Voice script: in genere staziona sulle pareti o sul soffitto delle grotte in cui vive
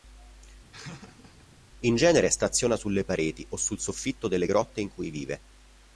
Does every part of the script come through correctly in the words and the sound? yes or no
no